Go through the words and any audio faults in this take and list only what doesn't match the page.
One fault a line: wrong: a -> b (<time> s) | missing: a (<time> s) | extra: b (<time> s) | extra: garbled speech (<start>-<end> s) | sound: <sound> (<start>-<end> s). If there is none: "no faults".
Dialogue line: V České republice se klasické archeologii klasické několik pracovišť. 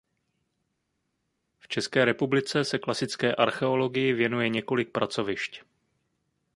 wrong: klasické -> věnuje (4.1 s)